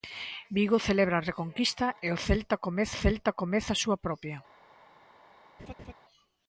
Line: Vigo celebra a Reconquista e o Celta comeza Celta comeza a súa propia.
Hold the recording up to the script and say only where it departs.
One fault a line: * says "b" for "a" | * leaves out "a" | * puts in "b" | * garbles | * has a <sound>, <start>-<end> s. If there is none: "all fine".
* has a laugh, 5.6-5.9 s